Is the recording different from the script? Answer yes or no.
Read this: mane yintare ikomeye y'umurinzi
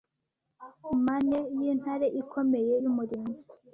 no